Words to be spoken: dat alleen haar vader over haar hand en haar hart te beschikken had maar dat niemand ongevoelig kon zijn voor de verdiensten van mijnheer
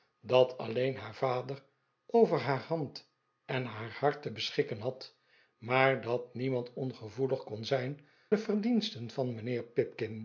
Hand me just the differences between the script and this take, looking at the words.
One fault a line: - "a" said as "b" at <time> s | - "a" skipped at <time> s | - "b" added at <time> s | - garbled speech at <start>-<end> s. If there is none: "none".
- "voor" skipped at 8.1 s